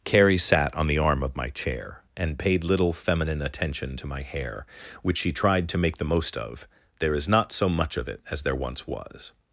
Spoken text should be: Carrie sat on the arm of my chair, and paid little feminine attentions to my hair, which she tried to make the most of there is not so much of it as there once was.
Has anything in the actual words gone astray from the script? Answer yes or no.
yes